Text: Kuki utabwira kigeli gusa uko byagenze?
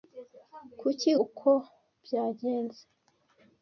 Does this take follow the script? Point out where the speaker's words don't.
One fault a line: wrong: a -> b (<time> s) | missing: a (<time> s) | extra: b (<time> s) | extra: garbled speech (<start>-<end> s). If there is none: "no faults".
missing: utabwira kigeli gusa (1.1 s)